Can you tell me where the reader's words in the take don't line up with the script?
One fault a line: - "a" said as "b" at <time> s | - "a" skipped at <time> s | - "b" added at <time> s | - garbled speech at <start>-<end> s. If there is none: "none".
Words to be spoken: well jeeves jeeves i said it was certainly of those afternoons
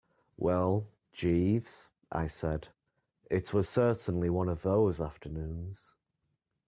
- "jeeves" skipped at 1.9 s
- "one" added at 4.3 s